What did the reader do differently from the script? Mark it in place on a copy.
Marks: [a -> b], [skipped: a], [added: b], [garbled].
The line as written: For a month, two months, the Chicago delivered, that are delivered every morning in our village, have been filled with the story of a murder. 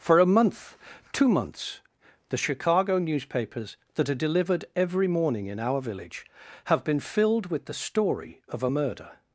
For a month, two months, the Chicago [delivered, -> newspapers] that are delivered every morning in our village, have been filled with the story of a murder.